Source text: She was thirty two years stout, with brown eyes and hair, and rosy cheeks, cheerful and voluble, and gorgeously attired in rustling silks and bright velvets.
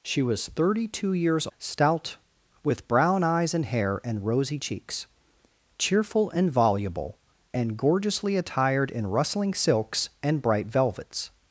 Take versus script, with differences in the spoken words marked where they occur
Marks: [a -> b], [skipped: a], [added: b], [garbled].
She was thirty two years stout, with brown eyes and hair, and rosy cheeks, cheerful and voluble, and gorgeously attired in rustling silks and bright velvets.